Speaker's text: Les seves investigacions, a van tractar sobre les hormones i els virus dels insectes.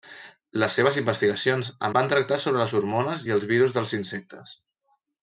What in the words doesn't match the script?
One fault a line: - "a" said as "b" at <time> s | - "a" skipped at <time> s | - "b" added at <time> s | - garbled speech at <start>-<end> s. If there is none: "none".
none